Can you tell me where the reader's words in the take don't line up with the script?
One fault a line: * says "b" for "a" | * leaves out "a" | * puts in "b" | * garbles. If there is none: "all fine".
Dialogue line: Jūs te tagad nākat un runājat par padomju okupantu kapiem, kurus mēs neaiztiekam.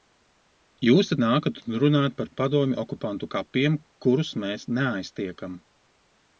* leaves out "tagad"